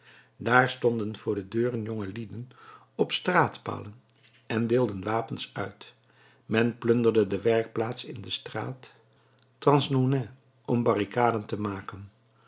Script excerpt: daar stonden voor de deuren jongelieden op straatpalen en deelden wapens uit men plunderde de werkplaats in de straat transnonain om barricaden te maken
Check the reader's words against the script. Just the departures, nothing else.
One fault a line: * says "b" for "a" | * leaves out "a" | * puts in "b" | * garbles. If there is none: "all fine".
all fine